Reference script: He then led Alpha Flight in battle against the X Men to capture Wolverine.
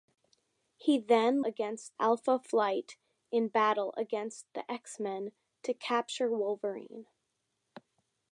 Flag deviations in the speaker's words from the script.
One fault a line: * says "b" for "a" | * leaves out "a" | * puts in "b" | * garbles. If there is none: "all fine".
* says "against" for "led"